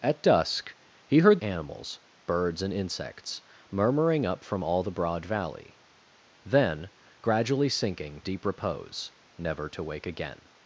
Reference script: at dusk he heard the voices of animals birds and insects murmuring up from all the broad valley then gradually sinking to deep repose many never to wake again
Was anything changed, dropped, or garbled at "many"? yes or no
yes